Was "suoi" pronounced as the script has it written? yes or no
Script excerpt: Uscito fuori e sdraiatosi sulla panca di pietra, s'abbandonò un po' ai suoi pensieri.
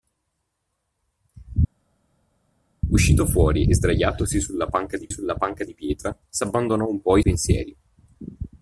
no